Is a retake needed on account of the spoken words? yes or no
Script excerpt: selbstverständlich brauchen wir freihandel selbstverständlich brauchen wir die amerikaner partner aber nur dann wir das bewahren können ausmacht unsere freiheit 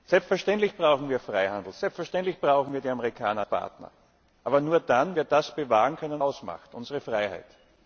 no